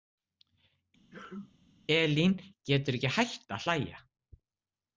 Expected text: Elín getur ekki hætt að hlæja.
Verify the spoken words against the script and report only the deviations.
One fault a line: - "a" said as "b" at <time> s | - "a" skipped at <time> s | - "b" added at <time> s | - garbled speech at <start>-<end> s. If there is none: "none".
none